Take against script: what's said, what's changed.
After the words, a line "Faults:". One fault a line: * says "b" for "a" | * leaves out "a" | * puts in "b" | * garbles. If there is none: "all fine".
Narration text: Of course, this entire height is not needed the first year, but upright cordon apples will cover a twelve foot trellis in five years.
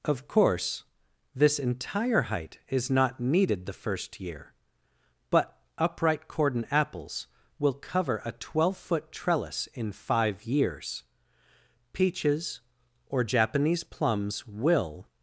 Of course, this entire height is not needed the first year, but upright cordon apples will cover a twelve foot trellis in five years. Peaches or Japanese plums will
Faults:
* puts in "Peaches or Japanese plums will"